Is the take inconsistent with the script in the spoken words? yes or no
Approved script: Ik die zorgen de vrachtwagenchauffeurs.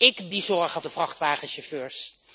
no